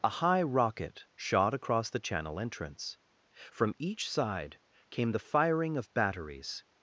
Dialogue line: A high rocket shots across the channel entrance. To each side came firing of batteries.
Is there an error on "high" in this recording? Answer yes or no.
no